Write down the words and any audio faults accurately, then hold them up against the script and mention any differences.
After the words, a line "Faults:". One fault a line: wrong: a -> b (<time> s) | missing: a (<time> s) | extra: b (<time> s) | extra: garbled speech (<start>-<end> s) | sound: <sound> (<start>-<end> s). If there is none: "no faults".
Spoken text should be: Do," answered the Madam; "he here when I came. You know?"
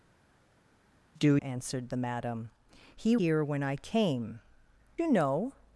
Do," answered the Madam; "he here when I came. You know?"
Faults:
no faults